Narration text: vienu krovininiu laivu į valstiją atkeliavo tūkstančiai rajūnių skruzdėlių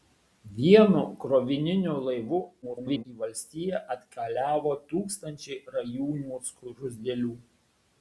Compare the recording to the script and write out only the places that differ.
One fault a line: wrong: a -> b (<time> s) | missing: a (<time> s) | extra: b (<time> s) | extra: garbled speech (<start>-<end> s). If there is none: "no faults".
extra: garbled speech (2.6-3.0 s)